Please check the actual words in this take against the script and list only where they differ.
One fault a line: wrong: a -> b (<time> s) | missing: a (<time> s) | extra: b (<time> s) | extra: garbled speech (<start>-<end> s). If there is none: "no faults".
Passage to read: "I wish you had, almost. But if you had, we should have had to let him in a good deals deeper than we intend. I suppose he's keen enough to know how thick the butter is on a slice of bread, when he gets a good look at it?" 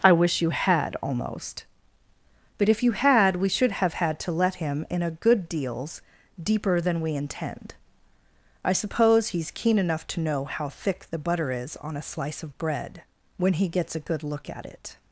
no faults